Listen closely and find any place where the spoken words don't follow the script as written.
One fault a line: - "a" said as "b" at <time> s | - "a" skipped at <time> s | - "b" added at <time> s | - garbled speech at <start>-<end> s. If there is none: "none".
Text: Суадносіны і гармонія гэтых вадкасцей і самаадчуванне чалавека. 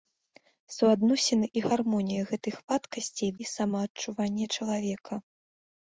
none